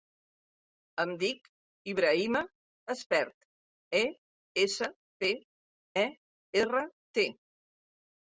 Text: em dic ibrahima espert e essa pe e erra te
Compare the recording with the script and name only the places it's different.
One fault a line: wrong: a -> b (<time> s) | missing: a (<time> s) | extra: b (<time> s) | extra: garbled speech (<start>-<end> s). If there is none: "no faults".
no faults